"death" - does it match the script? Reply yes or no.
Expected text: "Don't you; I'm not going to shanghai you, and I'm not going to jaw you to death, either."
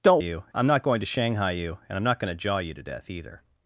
yes